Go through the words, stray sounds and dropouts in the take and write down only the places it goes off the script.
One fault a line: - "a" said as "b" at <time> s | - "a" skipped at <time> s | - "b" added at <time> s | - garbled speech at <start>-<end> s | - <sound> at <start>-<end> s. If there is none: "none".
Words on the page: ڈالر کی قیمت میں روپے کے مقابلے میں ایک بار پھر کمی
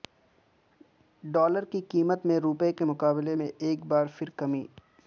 none